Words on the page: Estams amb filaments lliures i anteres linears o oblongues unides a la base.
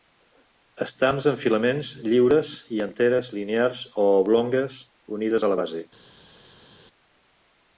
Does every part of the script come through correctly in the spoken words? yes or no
yes